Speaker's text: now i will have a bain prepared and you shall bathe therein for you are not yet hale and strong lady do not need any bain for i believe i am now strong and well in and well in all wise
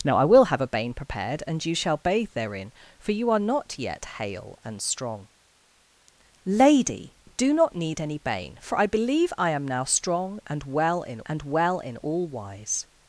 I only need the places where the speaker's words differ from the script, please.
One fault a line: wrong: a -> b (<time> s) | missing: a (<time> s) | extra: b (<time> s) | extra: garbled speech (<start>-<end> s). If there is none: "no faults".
no faults